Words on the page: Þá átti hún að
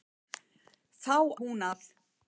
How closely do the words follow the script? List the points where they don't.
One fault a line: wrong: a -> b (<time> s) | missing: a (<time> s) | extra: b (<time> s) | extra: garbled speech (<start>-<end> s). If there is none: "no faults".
missing: átti (1.2 s)